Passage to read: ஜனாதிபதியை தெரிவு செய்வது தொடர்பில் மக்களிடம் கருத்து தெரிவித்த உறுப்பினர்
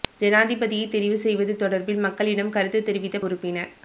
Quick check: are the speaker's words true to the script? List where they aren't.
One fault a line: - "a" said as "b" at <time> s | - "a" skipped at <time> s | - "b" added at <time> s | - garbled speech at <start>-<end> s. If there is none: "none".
none